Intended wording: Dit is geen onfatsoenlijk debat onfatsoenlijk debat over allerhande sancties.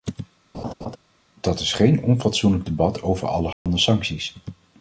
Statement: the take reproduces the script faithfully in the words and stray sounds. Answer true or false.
false